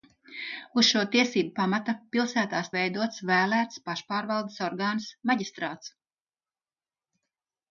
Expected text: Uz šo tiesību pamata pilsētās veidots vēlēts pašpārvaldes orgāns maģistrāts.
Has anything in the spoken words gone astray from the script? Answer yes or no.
no